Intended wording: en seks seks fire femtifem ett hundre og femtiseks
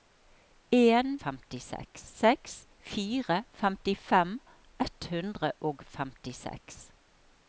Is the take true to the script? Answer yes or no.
no